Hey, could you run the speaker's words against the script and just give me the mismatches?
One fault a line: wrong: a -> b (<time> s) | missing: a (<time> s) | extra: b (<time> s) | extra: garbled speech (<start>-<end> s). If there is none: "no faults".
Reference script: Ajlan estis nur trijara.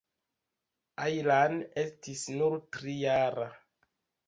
no faults